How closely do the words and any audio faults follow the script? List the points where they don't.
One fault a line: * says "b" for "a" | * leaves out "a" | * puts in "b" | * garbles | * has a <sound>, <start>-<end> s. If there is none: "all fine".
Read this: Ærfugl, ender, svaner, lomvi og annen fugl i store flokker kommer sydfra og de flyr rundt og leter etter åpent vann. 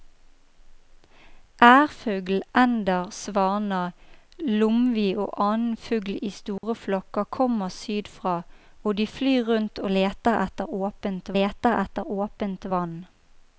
* has a dropout, 6.6-6.6 s
* puts in "leter etter åpent"